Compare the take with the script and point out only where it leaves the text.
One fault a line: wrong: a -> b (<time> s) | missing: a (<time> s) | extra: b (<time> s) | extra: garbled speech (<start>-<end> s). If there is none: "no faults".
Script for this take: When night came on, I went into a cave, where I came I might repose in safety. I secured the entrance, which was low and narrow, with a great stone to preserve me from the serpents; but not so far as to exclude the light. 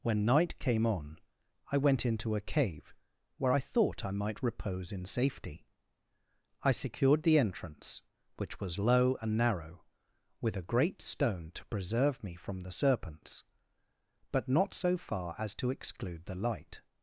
wrong: came -> thought (3.6 s)